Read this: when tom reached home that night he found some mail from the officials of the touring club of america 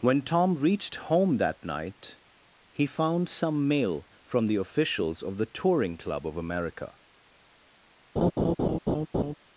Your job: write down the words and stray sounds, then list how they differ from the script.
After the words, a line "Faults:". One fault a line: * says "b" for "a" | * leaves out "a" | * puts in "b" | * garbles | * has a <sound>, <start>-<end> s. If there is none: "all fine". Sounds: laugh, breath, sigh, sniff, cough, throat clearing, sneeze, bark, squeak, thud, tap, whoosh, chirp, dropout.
when tom reached home that night he found some mail from the officials of the touring club of america
Faults:
* has a laugh, 8.2-9.3 s